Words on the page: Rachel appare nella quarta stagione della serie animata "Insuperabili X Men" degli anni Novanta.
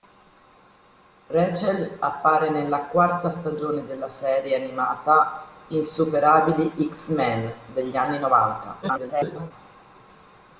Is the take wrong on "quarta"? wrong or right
right